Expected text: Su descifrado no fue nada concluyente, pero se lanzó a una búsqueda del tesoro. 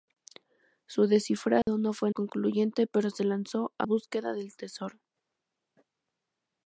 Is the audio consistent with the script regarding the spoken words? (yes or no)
no